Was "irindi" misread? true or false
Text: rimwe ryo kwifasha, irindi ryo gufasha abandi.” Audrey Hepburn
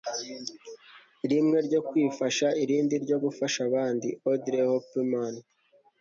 false